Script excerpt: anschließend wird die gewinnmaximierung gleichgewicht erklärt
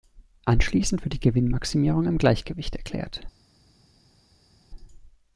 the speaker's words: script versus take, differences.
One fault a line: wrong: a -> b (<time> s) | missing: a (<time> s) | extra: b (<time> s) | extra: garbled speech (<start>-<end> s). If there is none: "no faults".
extra: im (2.1 s)